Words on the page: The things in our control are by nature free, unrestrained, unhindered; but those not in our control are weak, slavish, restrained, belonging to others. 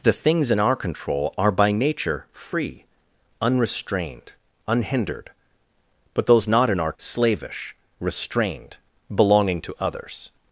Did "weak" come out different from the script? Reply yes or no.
yes